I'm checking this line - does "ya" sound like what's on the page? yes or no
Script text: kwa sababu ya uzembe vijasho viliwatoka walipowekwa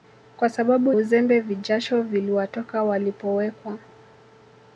no